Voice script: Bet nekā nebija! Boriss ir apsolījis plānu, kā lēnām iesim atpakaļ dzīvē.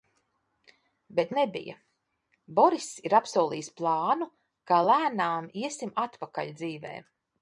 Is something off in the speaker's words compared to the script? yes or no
yes